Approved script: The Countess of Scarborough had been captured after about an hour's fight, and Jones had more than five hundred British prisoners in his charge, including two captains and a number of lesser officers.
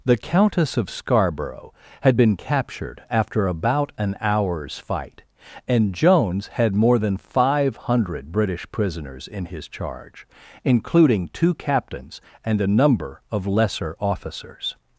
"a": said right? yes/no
yes